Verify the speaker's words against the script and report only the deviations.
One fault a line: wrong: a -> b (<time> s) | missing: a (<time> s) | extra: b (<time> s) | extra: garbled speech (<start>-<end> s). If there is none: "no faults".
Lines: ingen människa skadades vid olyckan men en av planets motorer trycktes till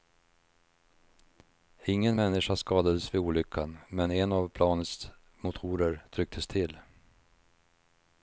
no faults